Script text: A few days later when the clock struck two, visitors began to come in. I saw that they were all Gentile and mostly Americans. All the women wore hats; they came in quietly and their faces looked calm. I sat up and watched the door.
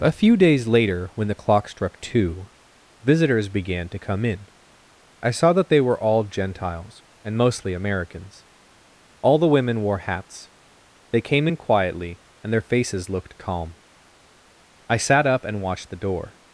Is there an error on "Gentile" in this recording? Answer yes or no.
yes